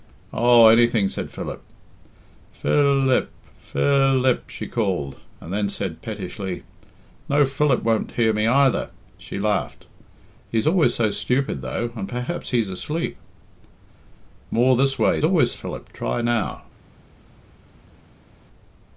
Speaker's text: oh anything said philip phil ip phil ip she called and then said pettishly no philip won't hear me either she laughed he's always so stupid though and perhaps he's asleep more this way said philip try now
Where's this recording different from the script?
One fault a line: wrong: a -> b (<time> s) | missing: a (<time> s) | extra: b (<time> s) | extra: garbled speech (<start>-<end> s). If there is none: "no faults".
wrong: said -> always (15.2 s)